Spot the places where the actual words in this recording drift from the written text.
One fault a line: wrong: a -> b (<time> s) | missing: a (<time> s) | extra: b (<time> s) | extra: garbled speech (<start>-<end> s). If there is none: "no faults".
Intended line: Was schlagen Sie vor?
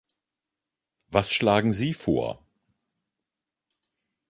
no faults